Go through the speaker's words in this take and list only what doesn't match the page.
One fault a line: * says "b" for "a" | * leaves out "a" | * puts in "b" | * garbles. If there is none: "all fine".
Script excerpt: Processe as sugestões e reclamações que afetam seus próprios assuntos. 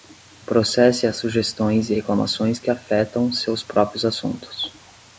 all fine